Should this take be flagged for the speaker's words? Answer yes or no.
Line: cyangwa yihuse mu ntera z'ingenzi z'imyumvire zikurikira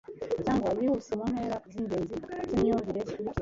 no